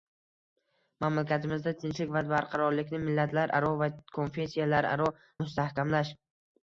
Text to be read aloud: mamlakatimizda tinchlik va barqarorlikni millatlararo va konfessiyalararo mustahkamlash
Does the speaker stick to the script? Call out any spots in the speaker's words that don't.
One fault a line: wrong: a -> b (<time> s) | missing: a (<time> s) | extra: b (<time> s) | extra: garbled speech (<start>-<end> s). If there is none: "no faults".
no faults